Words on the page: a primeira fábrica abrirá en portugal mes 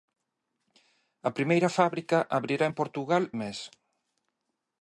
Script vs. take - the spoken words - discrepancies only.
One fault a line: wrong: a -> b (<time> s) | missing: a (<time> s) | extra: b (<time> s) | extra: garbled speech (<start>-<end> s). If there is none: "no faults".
no faults